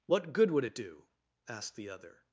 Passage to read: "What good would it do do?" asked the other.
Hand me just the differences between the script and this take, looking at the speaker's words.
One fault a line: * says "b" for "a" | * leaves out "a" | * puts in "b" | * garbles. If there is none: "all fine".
* leaves out "do"